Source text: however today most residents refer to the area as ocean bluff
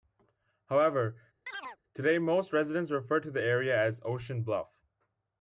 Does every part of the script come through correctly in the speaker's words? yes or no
yes